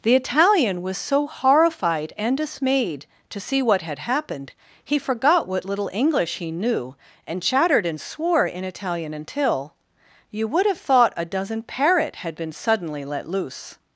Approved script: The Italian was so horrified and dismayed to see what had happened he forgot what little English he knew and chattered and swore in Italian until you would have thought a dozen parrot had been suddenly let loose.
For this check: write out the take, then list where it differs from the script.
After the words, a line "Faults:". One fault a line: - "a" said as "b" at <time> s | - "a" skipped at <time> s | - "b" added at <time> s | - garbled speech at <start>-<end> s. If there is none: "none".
The Italian was so horrified and dismayed to see what had happened he forgot what little English he knew and chattered and swore in Italian until you would have thought a dozen parrot had been suddenly let loose.
Faults:
none